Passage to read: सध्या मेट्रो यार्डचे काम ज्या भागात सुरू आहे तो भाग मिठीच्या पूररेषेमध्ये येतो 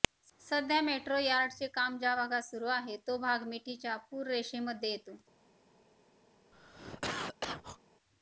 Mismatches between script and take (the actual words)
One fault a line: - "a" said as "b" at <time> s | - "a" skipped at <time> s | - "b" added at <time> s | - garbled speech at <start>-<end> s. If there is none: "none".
none